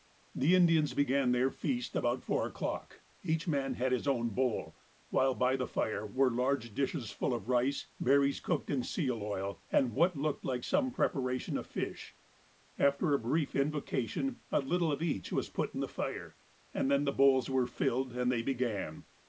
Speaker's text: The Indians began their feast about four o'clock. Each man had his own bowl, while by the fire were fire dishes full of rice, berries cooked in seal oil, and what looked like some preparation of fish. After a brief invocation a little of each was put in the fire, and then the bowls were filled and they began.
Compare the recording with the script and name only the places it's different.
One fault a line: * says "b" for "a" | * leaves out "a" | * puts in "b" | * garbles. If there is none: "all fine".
* says "large" for "fire"